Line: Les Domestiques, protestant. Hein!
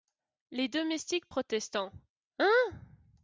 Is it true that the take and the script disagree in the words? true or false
false